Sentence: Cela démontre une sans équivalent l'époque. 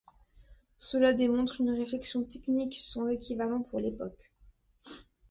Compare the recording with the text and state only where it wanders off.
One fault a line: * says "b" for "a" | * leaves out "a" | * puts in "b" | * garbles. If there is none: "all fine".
* puts in "réflexion technique"
* puts in "pour"